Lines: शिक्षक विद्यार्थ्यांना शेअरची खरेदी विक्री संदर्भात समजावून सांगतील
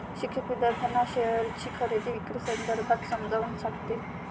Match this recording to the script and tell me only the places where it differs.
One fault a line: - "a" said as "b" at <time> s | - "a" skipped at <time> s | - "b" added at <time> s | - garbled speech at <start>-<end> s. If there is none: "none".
none